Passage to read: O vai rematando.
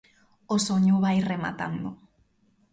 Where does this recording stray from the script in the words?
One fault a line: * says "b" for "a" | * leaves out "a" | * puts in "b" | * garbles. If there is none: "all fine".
* puts in "soño"